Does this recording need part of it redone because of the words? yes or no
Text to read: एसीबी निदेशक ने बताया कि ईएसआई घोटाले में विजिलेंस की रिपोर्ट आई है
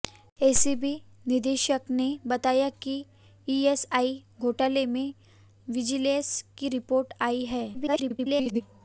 yes